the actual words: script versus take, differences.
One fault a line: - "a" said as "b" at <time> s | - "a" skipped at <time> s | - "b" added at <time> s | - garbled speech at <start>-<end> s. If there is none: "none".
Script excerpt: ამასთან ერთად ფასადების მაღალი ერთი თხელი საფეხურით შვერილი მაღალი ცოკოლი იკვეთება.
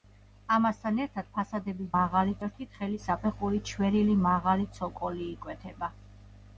none